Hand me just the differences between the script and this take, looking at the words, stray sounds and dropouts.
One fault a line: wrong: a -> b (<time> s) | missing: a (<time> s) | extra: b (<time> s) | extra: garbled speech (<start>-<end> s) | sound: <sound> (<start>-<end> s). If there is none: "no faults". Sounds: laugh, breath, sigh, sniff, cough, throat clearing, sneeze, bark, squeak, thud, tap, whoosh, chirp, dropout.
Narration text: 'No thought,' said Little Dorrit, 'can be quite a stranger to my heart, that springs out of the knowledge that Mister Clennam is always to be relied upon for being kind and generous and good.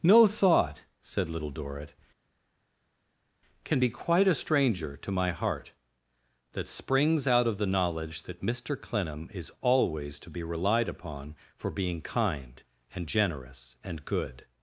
no faults